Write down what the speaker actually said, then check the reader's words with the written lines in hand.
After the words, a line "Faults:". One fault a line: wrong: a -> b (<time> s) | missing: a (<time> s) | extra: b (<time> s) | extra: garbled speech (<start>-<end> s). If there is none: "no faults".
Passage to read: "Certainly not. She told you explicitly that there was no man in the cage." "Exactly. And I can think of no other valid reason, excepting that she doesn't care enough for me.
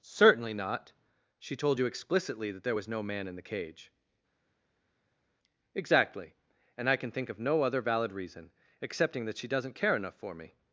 "Certainly not. She told you explicitly that there was no man in the cage." "Exactly. And I can think of no other valid reason, excepting that she doesn't care enough for me.
Faults:
no faults